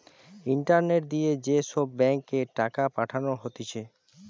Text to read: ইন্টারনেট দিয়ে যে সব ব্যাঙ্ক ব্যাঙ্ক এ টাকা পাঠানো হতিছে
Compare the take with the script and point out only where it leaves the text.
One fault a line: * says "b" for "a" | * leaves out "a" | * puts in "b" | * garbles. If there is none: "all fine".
* leaves out "ব্যাঙ্ক"